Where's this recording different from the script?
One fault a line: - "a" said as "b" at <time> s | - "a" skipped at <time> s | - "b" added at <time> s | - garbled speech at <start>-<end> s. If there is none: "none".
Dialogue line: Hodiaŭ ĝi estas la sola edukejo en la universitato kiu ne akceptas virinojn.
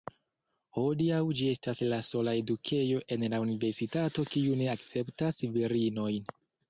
none